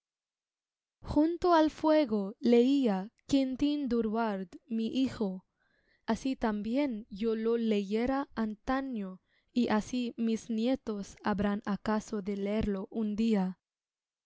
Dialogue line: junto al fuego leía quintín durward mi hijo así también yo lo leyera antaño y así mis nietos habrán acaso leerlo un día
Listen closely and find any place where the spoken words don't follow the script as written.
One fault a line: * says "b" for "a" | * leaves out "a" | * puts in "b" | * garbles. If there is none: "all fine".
* puts in "de"